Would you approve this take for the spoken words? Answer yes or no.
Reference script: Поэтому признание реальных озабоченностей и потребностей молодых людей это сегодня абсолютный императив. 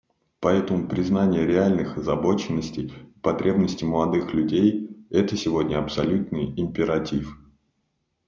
yes